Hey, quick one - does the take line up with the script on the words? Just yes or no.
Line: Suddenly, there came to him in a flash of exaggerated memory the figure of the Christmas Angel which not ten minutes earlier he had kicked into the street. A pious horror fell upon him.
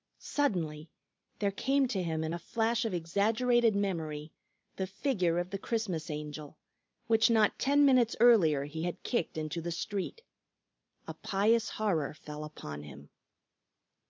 yes